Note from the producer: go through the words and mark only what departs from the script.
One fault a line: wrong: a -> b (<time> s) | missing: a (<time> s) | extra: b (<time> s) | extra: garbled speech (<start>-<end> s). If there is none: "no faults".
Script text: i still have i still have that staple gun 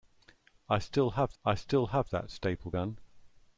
no faults